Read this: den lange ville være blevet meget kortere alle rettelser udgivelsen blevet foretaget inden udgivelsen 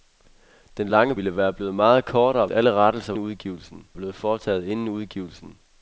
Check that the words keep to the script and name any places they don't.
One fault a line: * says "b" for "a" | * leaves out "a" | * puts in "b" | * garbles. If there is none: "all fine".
all fine